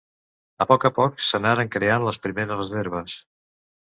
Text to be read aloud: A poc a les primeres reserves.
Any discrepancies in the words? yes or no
yes